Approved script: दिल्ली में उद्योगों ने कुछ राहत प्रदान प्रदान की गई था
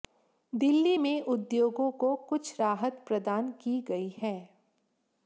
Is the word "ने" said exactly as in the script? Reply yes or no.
no